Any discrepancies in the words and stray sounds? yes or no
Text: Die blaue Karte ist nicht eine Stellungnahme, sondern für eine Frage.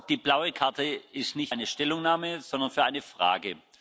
no